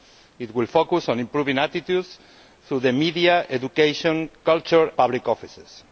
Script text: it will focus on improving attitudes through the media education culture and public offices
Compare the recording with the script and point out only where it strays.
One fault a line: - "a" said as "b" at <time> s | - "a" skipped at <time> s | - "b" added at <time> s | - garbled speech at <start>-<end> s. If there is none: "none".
- "and" skipped at 4.9 s